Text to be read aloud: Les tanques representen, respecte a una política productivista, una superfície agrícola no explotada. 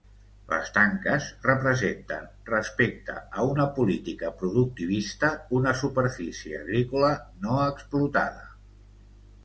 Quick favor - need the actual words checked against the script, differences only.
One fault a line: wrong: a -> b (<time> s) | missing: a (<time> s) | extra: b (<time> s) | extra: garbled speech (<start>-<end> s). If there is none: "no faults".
no faults